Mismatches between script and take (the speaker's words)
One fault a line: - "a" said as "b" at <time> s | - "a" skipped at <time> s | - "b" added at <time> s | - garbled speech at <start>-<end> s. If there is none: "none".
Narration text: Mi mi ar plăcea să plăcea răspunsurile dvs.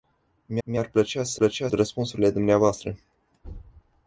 none